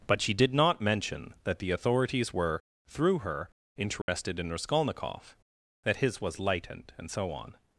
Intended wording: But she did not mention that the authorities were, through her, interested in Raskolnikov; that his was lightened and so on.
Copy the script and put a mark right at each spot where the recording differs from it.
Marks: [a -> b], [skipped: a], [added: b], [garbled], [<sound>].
But she did not mention that the authorities were, through her, interested [dropout] in Raskolnikov; that his was lightened and so on.